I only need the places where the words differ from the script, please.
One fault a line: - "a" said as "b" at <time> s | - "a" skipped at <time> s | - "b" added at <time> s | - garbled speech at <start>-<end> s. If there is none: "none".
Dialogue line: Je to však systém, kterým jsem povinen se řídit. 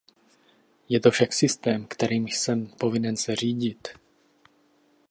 none